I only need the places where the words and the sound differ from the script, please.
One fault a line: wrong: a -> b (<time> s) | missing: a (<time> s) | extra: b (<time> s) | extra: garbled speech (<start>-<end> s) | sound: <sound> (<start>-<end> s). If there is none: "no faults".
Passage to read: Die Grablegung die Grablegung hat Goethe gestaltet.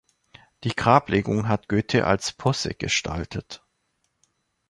wrong: die Grablegung hat Goethe -> hat Goethe als Posse (1.5 s)